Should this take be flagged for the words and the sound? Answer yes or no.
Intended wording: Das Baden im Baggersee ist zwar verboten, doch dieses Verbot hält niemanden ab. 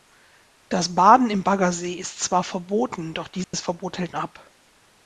yes